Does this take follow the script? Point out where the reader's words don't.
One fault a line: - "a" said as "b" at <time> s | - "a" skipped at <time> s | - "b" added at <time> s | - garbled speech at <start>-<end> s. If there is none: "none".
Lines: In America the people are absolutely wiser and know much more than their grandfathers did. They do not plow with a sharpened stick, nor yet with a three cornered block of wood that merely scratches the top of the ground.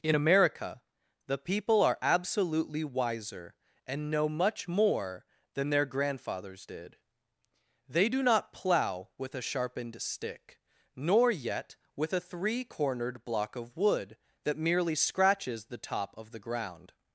none